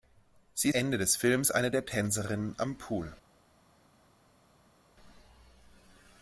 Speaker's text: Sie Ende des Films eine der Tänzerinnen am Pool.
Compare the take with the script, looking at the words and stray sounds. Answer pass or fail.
pass